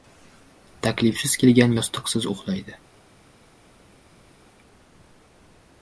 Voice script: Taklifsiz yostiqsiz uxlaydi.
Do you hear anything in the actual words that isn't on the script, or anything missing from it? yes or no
yes